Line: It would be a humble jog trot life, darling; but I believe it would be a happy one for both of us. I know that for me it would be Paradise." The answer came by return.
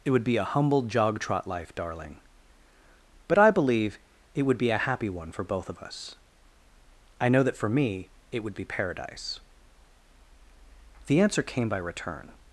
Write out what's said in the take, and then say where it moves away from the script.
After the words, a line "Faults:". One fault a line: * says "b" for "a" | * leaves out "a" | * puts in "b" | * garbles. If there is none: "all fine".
It would be a humble jog trot life, darling; but I believe it would be a happy one for both of us. I know that for me it would be Paradise." The answer came by return.
Faults:
all fine